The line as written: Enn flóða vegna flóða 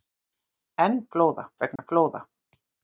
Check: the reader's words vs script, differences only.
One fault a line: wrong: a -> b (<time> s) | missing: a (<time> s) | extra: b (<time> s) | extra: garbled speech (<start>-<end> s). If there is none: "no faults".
no faults